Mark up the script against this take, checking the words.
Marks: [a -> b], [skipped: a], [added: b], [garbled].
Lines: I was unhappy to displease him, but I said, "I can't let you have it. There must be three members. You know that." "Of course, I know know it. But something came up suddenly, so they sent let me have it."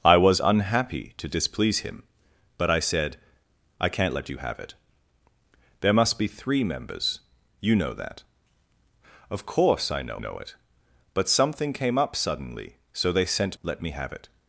I was unhappy to displease him, but I said, "I can't let you have it. There must be three members. You know that." "Of course, I know know it. But something came up suddenly, so they sent let me have it."